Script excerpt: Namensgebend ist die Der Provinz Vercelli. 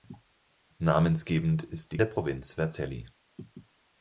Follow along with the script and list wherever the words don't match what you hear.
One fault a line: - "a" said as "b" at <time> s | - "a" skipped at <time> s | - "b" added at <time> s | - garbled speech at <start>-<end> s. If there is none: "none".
none